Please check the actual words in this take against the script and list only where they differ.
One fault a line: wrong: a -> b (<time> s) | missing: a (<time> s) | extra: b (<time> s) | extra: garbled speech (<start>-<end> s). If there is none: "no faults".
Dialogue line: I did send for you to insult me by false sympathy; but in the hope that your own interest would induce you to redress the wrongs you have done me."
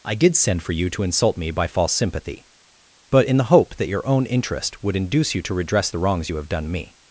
no faults